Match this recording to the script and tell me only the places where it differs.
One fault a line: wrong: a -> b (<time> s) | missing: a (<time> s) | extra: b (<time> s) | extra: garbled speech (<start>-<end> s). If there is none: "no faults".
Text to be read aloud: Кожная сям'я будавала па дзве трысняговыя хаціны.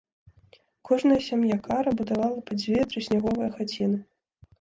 extra: кара (1.7 s)